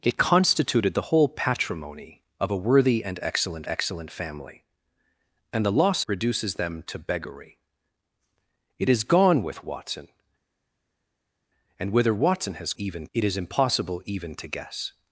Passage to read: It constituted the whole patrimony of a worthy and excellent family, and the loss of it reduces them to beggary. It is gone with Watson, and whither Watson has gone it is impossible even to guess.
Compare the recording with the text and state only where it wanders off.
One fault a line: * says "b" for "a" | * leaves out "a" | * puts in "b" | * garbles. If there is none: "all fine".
* puts in "excellent"
* leaves out "of it"
* says "even" for "gone"